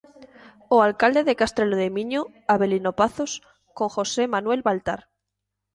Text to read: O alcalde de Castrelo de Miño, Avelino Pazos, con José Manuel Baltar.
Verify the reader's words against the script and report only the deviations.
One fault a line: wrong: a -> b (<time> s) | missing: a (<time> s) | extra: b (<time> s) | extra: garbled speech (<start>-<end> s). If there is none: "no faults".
no faults